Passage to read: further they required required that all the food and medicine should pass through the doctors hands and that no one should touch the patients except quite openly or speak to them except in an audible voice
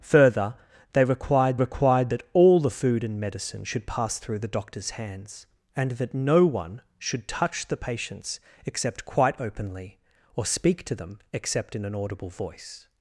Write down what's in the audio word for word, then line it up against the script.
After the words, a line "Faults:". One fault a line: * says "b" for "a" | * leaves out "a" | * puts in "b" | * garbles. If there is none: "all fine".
further they required required that all the food and medicine should pass through the doctors hands and that no one should touch the patients except quite openly or speak to them except in an audible voice
Faults:
all fine